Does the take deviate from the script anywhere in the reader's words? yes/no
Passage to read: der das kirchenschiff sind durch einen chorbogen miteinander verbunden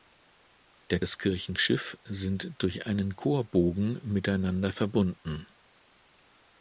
no